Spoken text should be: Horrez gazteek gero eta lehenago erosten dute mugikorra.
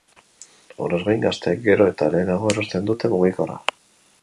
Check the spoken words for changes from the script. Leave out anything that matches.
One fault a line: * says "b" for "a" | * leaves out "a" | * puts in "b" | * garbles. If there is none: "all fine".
* puts in "gain"